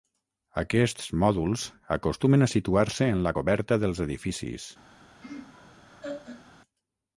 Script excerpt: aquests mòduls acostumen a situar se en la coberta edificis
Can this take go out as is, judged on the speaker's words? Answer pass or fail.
fail